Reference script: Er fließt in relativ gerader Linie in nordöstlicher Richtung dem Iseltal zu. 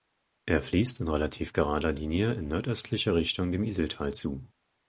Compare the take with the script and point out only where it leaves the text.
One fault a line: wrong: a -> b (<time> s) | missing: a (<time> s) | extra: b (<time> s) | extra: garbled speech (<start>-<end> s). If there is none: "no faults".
no faults